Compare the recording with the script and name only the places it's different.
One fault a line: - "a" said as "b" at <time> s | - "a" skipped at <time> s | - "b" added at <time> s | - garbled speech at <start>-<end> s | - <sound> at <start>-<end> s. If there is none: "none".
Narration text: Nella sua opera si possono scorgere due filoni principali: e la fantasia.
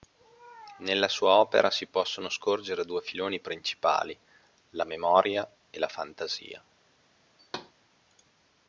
- "la memoria" added at 4.7 s
- thud at 7.4-7.7 s